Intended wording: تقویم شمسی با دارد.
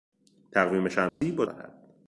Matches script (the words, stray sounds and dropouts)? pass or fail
fail